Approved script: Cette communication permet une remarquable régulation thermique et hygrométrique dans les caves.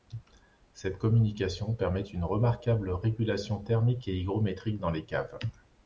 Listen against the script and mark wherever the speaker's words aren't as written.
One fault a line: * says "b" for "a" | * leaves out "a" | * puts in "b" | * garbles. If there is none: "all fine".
all fine